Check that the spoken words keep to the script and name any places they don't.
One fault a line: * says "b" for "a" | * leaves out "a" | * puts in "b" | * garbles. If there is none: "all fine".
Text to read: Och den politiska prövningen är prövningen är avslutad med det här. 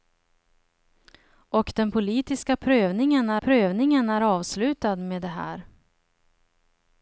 all fine